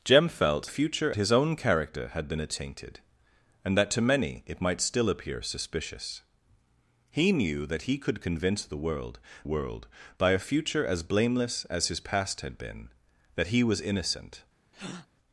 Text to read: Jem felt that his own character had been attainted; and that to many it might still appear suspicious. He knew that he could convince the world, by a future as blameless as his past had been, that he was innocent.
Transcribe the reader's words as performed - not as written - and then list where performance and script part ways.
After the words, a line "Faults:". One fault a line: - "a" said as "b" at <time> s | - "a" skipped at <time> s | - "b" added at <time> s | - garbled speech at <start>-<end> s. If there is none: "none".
Jem felt future his own character had been attainted; and that to many it might still appear suspicious. He knew that he could convince the world world, by a future as blameless as his past had been, that he was innocent.
Faults:
- "that" said as "future" at 0.6 s
- "world" added at 9.4 s